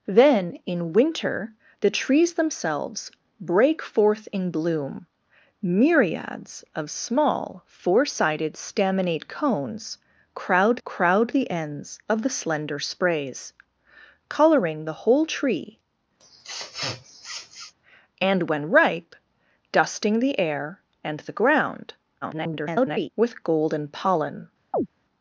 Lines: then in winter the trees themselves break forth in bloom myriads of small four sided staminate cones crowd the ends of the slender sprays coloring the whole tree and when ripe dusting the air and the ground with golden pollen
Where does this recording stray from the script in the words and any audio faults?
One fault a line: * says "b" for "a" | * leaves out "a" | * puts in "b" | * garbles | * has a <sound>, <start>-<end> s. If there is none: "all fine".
* puts in "crowd"
* has a sniff, 16.2-17.7 s
* garbles
* has a chirp, 24.7-24.9 s